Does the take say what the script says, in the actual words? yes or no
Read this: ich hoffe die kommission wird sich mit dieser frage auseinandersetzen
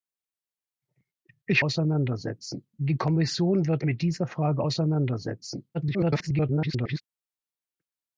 no